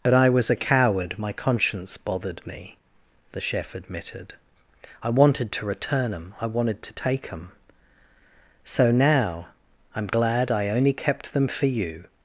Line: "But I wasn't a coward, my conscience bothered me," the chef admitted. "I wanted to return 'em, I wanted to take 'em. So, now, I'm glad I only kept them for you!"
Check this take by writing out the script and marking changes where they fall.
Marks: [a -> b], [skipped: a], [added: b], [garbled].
"But I [wasn't -> was] a coward, my conscience bothered me," the chef admitted. "I wanted to return 'em, I wanted to take 'em. So, now, I'm glad I only kept them for you!"